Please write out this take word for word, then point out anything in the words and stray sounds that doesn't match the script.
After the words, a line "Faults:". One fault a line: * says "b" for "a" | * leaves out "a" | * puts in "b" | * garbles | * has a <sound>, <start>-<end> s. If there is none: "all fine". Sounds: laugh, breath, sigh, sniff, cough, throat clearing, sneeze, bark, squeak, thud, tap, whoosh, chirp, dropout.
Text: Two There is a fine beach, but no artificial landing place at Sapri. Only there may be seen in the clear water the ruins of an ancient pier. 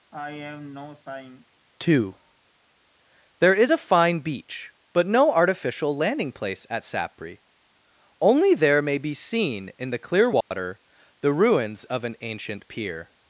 Two There is a fine beach, but no artificial landing place at Sapri. Only there may be seen in the clear water the ruins of an ancient pier.
Faults:
* has a sigh, 0.1-1.5 s
* has a dropout, 10.4-10.5 s